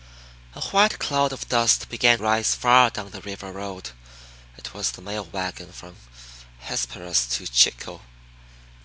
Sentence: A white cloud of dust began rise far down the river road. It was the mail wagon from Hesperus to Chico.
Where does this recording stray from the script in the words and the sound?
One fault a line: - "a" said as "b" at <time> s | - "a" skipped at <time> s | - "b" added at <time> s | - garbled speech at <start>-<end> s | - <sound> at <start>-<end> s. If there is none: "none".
none